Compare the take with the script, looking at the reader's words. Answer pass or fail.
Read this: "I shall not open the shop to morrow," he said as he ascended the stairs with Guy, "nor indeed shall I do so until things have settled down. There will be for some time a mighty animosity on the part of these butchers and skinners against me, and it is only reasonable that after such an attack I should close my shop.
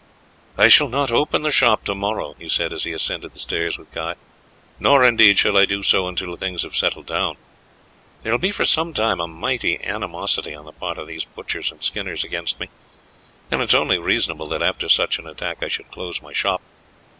pass